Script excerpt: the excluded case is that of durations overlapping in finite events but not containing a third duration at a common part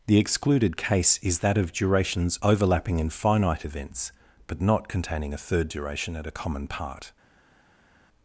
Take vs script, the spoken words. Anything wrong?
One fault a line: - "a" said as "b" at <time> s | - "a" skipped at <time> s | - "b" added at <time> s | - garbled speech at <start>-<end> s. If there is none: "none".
none